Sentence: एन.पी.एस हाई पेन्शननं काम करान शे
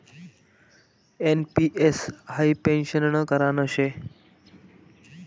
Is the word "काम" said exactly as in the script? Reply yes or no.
no